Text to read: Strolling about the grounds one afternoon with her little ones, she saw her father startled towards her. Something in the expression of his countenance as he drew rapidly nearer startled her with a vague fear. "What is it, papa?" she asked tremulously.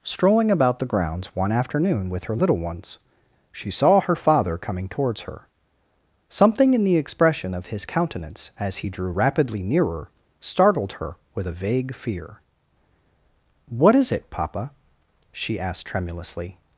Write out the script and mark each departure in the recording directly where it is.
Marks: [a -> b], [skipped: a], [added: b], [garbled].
Strolling about the grounds one afternoon with her little ones, she saw her father [startled -> coming] towards her. Something in the expression of his countenance as he drew rapidly nearer startled her with a vague fear. "What is it, papa?" she asked tremulously.